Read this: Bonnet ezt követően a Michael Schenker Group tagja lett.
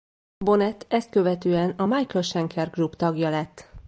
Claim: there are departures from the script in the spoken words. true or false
false